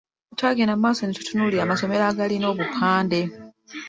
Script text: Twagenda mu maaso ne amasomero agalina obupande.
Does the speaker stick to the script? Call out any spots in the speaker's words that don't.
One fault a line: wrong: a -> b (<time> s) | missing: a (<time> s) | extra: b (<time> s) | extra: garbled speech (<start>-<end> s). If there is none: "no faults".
extra: tutunuulira (1.2 s)